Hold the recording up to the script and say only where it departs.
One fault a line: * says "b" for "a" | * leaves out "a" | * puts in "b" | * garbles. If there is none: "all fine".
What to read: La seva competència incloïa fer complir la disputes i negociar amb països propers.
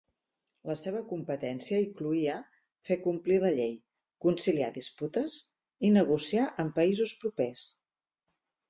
* puts in "llei conciliar"